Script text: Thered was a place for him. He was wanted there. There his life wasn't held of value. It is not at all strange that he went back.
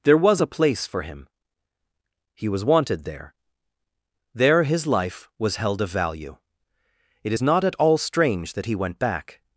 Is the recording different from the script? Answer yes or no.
yes